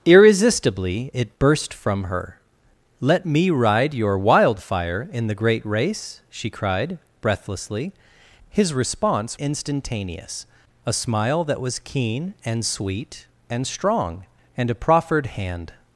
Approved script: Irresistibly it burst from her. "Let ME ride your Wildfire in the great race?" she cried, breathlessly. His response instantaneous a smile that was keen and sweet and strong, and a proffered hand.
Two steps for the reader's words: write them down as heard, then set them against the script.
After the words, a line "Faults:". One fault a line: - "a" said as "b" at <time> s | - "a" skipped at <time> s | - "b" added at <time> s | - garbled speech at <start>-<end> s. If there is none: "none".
Irresistibly it burst from her. "Let ME ride your Wildfire in the great race?" she cried, breathlessly. His response instantaneous a smile that was keen and sweet and strong, and a proffered hand.
Faults:
none